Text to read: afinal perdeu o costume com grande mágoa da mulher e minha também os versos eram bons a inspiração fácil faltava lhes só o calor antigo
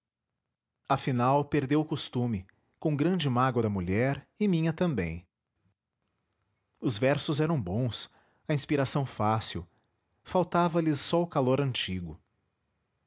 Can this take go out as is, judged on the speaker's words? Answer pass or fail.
pass